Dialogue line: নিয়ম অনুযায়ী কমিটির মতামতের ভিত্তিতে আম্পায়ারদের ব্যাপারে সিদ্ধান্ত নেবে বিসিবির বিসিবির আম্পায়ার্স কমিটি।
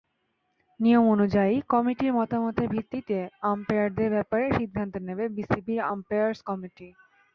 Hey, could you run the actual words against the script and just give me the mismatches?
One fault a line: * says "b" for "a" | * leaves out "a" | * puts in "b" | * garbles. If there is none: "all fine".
* leaves out "বিসিবির"